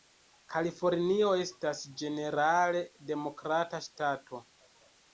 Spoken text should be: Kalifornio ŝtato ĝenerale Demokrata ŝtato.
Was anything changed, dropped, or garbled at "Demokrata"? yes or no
no